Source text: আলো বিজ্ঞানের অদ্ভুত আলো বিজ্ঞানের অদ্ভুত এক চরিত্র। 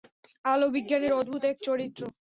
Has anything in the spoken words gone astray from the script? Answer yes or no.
yes